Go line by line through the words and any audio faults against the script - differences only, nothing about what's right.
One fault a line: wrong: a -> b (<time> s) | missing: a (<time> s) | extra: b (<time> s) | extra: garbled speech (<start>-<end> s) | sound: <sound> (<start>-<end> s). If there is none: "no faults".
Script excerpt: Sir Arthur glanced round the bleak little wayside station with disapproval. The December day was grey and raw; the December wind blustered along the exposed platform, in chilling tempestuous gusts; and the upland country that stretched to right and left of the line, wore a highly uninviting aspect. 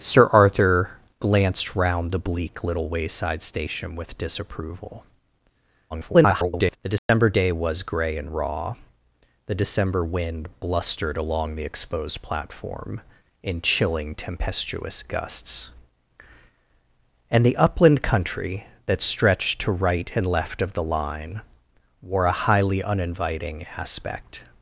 extra: garbled speech (5.9-6.8 s)
sound: dropout (7.0-7.1 s)